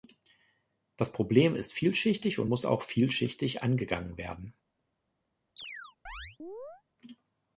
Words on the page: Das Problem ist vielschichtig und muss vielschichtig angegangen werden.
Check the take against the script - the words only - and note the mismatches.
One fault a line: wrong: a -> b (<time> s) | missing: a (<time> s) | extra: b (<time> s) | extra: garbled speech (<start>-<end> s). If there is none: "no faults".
extra: auch (2.7 s)